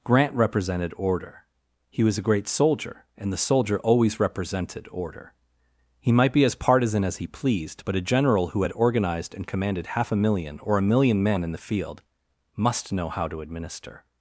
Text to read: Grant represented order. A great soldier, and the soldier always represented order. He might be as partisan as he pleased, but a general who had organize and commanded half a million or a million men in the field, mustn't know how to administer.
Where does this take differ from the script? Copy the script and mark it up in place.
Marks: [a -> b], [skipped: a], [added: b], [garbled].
Grant represented order. [added: He was] A great soldier, and the soldier always represented order. He might be as partisan as he pleased, but a general who had [organize -> organized] and commanded half a million or a million men in the field, [mustn't -> must] know how to administer.